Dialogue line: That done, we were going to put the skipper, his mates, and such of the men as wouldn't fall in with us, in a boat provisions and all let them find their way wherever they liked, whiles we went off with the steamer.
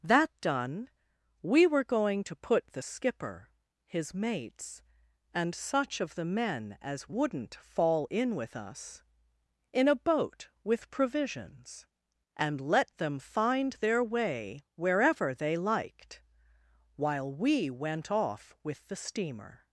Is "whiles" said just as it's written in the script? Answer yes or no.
no